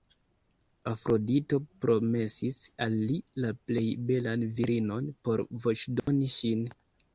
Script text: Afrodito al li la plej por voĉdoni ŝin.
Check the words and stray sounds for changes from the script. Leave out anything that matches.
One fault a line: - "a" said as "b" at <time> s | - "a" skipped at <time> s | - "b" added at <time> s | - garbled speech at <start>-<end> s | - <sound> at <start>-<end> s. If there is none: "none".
- "promesis" added at 1.9 s
- "belan virinon" added at 4.1 s
- dropout at 6.0-6.1 s